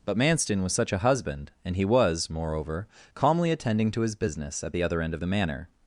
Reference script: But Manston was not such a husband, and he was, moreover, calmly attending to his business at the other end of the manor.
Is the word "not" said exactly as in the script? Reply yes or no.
no